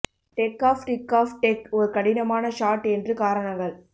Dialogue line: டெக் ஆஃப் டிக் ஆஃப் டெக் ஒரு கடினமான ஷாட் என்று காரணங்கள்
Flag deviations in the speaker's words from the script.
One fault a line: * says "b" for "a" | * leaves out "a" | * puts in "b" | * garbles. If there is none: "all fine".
all fine